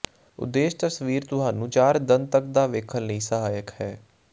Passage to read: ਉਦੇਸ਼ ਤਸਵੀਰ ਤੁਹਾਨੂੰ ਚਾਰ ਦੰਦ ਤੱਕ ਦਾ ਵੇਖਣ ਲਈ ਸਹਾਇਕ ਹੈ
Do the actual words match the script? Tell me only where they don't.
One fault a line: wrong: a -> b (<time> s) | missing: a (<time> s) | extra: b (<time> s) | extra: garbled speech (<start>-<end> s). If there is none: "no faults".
no faults